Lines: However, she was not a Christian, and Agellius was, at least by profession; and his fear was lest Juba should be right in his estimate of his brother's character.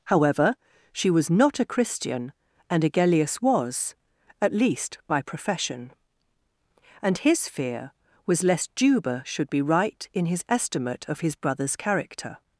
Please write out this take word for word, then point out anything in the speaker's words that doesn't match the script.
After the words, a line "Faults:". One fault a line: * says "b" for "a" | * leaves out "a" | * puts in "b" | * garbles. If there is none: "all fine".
However, she was not a Christian, and Agellius was, at least by profession; and his fear was lest Juba should be right in his estimate of his brother's character.
Faults:
all fine